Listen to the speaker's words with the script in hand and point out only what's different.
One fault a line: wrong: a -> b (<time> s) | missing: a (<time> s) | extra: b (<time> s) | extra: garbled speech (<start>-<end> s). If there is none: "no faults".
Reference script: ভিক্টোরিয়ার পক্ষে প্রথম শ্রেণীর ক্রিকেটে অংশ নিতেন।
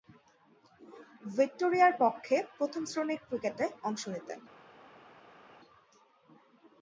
no faults